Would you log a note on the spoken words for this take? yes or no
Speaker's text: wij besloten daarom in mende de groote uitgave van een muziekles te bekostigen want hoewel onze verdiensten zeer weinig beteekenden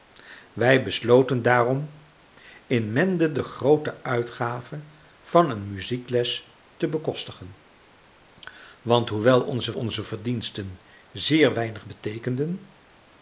yes